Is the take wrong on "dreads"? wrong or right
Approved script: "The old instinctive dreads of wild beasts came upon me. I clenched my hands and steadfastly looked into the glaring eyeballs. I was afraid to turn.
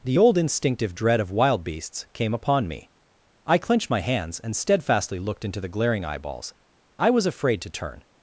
wrong